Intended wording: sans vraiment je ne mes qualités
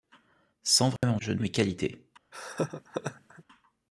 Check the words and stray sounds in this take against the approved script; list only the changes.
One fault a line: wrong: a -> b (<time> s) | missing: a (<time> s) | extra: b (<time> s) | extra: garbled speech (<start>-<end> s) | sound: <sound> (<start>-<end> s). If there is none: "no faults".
sound: dropout (1.0-1.0 s)
sound: laugh (2.3-3.4 s)